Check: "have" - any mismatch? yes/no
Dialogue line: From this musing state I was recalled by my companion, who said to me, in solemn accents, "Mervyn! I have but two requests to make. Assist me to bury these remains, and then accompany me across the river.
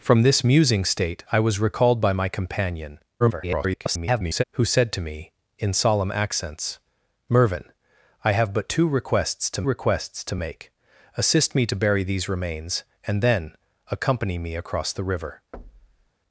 no